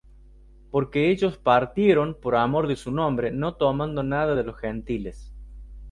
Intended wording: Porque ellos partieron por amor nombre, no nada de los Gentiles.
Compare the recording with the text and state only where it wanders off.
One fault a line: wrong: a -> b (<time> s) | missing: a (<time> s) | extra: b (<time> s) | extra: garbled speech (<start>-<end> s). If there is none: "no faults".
extra: de su (2.6 s)
extra: tomando (3.5 s)